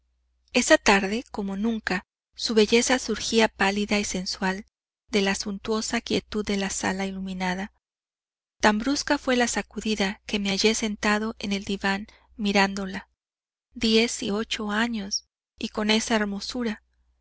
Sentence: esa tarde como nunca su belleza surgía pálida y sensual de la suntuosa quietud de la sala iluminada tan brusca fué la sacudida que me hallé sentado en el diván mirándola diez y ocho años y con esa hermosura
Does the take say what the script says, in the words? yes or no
yes